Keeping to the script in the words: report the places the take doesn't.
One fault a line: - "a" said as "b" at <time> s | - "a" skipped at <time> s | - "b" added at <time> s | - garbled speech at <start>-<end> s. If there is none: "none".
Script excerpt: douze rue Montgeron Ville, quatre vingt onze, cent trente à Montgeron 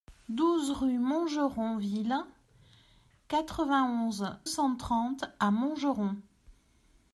none